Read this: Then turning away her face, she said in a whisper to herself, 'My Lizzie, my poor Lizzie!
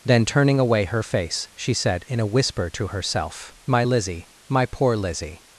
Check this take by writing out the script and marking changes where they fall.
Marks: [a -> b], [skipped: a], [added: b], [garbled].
Then turning away her face, she said in a whisper to herself, 'My Lizzie, my poor Lizzie!